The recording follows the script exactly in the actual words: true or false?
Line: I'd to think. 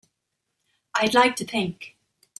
false